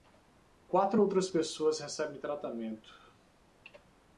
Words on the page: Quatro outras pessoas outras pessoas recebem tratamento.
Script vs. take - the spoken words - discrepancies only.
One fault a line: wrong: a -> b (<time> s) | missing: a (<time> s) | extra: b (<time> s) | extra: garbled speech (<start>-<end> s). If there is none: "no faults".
missing: outras pessoas (1.8 s)